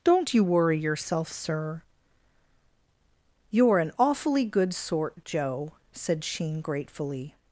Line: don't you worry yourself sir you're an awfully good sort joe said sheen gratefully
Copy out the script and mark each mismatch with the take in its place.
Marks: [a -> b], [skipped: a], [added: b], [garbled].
don't you worry yourself sir you're an awfully good sort joe said sheen gratefully